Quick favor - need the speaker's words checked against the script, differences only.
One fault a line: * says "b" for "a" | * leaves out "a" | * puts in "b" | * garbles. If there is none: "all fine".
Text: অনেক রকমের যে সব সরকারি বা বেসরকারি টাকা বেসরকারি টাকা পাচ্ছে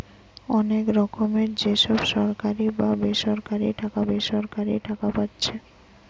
all fine